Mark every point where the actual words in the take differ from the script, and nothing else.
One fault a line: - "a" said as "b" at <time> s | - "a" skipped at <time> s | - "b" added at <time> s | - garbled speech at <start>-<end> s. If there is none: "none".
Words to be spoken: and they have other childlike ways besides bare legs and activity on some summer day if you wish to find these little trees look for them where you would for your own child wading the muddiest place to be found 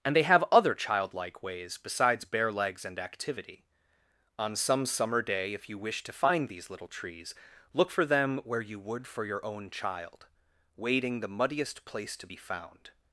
none